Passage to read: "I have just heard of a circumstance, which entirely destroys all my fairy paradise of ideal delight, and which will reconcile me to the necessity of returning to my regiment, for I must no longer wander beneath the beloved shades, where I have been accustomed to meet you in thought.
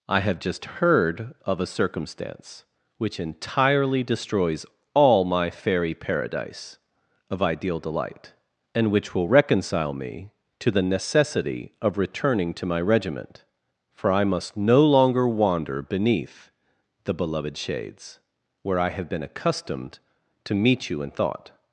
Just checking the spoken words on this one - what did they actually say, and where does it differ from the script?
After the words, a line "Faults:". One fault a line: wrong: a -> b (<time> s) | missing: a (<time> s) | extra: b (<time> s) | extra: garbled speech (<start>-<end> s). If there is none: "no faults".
"I have just heard of a circumstance, which entirely destroys all my fairy paradise of ideal delight, and which will reconcile me to the necessity of returning to my regiment, for I must no longer wander beneath the beloved shades, where I have been accustomed to meet you in thought.
Faults:
no faults